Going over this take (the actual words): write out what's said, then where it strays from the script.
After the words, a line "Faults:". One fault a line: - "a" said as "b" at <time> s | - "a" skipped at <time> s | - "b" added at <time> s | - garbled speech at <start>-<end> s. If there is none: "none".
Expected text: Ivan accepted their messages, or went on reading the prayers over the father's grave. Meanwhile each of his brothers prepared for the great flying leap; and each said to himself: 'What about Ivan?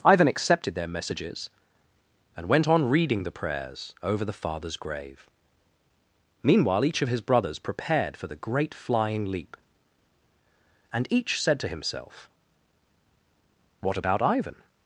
Ivan accepted their messages, and went on reading the prayers over the father's grave. Meanwhile each of his brothers prepared for the great flying leap; and each said to himself: 'What about Ivan?
Faults:
- "or" said as "and" at 2.4 s